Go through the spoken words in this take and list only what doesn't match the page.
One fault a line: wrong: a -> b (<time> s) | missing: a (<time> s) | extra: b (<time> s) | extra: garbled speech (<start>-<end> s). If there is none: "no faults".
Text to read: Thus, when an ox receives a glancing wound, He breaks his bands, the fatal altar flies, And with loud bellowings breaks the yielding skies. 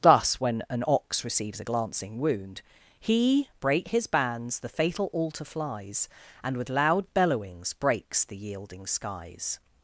wrong: breaks -> break (3.6 s)